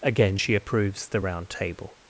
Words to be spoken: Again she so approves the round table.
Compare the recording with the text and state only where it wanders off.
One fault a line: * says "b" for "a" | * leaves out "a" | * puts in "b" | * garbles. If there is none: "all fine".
* leaves out "so"